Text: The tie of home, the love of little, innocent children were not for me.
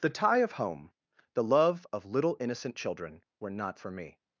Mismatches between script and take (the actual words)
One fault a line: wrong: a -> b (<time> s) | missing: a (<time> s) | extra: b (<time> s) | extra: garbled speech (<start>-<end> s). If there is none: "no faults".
no faults